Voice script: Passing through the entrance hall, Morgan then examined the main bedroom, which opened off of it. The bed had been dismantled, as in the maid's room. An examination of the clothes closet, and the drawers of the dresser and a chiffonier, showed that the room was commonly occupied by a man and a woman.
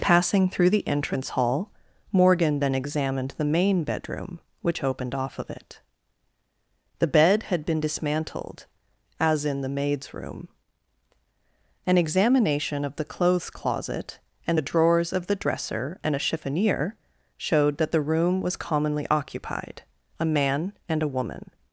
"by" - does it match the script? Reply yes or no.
no